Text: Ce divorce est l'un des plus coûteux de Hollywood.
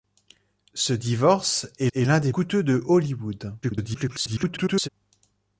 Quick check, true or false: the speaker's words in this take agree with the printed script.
false